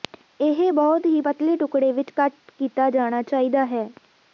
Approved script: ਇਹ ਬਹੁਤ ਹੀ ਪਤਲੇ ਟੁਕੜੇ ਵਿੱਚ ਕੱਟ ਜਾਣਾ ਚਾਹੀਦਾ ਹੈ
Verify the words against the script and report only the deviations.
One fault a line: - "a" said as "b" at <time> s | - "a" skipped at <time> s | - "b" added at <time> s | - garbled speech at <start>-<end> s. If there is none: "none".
- "ਕੀਤਾ" added at 2.6 s